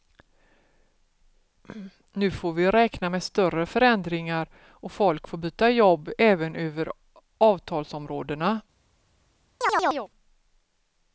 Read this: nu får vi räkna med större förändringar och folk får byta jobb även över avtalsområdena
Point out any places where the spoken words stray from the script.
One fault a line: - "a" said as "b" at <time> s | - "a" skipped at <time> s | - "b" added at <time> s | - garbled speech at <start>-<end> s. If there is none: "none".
none